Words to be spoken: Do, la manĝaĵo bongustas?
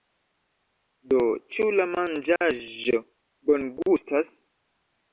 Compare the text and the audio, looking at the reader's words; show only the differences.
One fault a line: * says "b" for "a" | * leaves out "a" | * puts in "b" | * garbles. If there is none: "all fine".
* puts in "ĉu"